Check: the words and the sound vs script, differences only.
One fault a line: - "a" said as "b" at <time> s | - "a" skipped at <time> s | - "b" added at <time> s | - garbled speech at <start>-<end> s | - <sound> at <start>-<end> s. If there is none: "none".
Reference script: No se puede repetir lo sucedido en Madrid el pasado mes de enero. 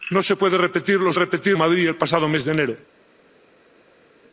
- "sucedido" said as "repetir" at 1.1 s